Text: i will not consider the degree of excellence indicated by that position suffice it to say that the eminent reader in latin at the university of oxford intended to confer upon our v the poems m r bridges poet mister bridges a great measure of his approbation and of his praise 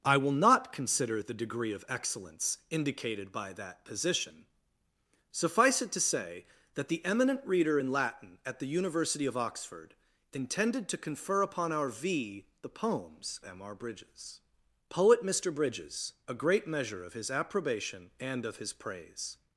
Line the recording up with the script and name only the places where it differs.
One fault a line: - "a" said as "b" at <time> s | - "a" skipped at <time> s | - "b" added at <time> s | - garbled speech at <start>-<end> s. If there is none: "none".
none